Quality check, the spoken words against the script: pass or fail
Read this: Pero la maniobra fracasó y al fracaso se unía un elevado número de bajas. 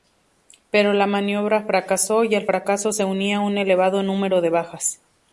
pass